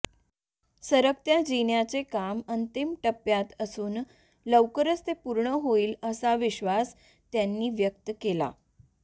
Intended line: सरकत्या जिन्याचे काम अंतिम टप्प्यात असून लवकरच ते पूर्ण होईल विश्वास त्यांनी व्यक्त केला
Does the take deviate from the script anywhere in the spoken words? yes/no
yes